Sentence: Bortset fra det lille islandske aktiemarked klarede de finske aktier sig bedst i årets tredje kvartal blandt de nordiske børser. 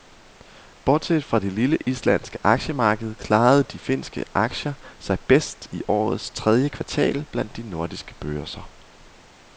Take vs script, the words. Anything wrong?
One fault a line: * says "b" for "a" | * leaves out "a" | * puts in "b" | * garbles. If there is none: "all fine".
all fine